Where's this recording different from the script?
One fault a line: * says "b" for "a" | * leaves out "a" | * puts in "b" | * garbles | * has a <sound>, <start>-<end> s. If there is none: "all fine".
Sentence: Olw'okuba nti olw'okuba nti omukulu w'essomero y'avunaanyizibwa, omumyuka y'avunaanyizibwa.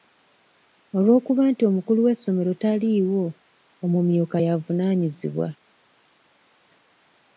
* leaves out "olw'okuba nti"
* says "taliiwo" for "y'avunaanyizibwa"